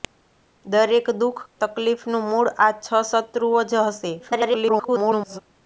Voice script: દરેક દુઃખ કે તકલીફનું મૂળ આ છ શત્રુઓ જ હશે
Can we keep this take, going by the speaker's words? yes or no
no